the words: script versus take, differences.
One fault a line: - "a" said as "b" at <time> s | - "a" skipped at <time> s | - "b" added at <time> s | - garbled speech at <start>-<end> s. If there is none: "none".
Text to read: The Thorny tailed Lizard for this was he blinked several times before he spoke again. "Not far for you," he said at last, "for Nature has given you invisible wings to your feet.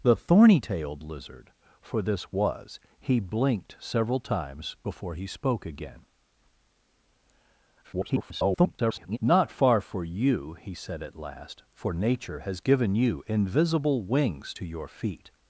- garbled speech at 7.8-9.2 s